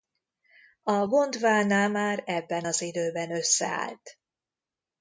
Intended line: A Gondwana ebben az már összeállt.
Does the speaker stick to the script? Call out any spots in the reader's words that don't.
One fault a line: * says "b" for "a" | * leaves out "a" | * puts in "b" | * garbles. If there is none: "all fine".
* puts in "már"
* says "időben" for "már"